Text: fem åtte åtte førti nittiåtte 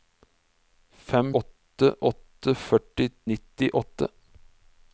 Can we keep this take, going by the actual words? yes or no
yes